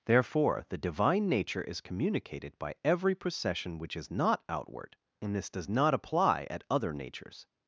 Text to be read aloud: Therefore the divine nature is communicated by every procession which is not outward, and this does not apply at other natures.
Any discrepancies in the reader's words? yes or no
no